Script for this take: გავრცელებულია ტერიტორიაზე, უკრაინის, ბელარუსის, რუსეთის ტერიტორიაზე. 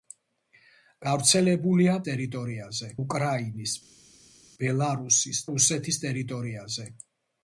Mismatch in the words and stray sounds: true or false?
false